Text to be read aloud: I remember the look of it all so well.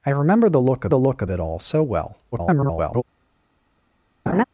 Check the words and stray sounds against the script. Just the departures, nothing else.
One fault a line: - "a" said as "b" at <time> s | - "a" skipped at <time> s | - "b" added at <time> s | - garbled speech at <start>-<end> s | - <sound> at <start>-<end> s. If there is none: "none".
- "the look of" added at 0.9 s
- garbled speech at 2.3-3.0 s
- laugh at 4.3-4.4 s